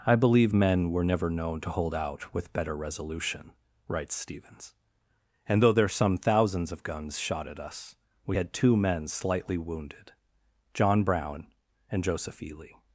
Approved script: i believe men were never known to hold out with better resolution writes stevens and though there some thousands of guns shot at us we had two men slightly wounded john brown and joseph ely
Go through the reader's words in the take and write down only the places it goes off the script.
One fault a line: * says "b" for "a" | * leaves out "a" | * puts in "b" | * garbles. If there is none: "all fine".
all fine